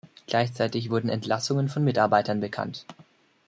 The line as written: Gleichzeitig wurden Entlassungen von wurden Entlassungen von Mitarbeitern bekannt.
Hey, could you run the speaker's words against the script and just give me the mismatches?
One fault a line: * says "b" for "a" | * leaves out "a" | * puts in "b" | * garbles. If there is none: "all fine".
* leaves out "wurden Entlassungen von"